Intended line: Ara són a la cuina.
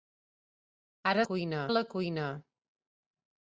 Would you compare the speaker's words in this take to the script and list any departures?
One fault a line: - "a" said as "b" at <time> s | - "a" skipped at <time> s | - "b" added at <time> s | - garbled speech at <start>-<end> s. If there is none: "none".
- "són" said as "cuina" at 1.3 s